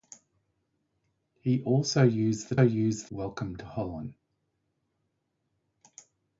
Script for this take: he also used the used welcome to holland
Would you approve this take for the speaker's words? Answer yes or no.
yes